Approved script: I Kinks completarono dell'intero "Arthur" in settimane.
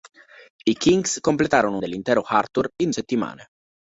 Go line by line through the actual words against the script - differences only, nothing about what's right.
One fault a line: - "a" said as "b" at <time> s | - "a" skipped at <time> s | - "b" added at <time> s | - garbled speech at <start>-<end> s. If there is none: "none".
none